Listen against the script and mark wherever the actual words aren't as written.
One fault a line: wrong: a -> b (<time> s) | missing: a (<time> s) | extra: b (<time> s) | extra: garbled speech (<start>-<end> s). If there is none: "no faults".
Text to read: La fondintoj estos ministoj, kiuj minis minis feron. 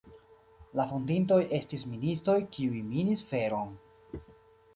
wrong: estos -> estis (1.6 s)
missing: minis (3.2 s)